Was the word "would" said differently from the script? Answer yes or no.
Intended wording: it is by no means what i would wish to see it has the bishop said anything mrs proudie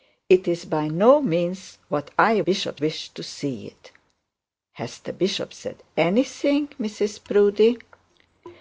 yes